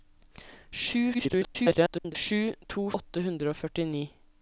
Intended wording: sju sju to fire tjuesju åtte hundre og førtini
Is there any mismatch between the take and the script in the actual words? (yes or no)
yes